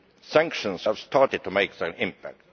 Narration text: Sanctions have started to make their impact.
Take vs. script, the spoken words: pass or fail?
pass